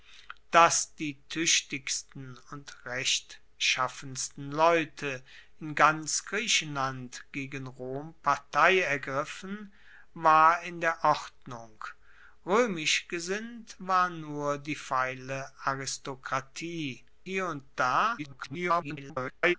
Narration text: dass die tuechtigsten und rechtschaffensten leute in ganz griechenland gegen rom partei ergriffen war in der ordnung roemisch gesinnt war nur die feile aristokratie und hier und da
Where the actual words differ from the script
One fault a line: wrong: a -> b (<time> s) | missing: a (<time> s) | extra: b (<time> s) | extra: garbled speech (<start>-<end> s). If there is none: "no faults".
missing: und (17.1 s)
extra: garbled speech (18.2-19.5 s)